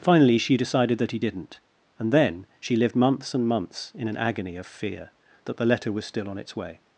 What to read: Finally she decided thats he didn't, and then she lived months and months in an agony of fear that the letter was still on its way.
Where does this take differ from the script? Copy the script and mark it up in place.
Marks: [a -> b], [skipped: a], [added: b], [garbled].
Finally she decided [thats -> that] he didn't, and then she lived months and months in an agony of fear that the letter was still on its way.